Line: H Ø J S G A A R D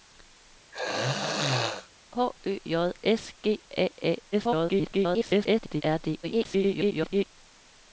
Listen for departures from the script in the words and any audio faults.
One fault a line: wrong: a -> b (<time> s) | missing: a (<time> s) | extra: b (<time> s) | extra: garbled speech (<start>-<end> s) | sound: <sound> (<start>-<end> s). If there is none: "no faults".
sound: throat clearing (0.7-1.9 s)
extra: garbled speech (4.3-5.8 s)
extra: garbled speech (6.2-7.3 s)